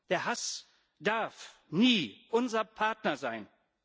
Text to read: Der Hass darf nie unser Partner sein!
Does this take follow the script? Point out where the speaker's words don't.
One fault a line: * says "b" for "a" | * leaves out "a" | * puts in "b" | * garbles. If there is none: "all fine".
all fine